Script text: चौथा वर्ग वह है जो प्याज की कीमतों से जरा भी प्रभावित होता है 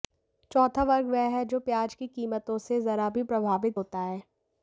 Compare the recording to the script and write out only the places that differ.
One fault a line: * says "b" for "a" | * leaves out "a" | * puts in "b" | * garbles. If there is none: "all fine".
all fine